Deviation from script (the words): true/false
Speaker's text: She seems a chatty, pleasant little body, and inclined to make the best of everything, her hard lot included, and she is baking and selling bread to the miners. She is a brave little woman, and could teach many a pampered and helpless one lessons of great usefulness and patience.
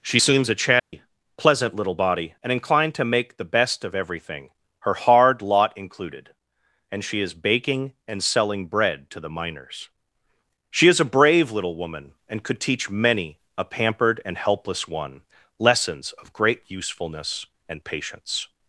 false